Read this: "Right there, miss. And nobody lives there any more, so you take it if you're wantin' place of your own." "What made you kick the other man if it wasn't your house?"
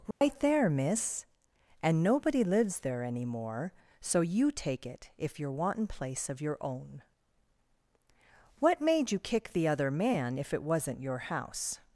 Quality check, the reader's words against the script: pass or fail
pass